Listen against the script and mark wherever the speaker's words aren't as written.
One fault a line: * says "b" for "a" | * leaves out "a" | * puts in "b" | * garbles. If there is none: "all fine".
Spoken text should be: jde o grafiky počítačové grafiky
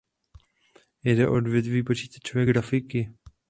* says "odvětví" for "grafiky"